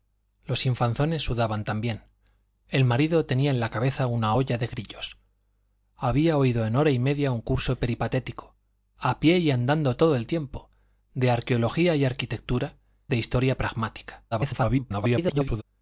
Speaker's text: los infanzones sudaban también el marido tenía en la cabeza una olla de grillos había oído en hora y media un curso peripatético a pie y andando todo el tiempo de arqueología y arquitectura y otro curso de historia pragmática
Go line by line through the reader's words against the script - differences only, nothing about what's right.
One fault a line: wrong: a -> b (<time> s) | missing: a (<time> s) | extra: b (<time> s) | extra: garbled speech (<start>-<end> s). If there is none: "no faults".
missing: y otro curso (12.8 s)
extra: garbled speech (14.3-15.6 s)